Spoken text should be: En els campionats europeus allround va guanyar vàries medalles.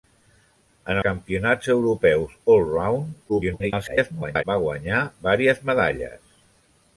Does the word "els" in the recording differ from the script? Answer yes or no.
yes